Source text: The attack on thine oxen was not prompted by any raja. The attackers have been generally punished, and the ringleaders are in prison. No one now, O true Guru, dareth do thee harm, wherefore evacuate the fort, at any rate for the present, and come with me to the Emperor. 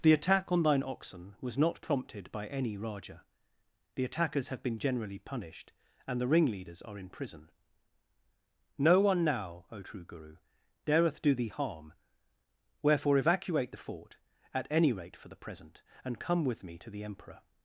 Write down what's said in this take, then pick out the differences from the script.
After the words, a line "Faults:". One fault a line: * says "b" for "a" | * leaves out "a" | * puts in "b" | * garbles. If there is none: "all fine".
The attack on thine oxen was not prompted by any raja. The attackers have been generally punished, and the ringleaders are in prison. No one now, O true Guru, dareth do thee harm, wherefore evacuate the fort, at any rate for the present, and come with me to the Emperor.
Faults:
all fine